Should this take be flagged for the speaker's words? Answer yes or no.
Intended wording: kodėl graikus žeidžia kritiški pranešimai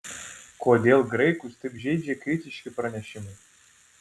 yes